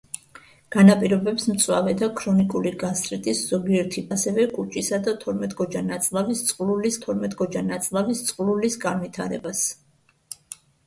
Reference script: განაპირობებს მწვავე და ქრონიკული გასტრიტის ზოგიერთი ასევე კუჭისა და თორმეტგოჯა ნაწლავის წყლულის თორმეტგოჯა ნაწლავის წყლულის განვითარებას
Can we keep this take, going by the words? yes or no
yes